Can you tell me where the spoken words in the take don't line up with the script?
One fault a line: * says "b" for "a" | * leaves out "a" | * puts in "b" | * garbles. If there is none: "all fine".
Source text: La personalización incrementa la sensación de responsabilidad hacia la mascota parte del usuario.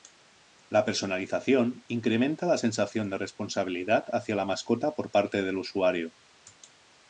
* puts in "por"